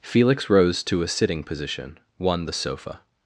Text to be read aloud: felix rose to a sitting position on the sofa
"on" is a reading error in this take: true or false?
true